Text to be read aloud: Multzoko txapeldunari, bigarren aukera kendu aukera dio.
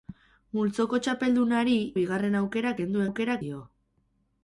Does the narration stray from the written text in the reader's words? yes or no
no